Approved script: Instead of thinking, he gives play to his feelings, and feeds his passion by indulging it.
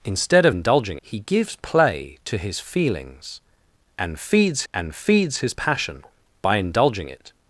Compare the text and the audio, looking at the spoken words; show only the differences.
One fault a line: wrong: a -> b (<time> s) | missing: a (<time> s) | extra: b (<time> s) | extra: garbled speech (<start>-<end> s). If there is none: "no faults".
wrong: thinking -> indulging (0.5 s)
extra: and feeds (4.7 s)